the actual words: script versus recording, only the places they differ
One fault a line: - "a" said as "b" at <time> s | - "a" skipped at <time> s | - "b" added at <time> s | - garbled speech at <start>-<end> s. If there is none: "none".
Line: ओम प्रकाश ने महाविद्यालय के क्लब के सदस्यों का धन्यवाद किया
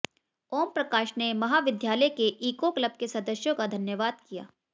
- "ईको" added at 2.5 s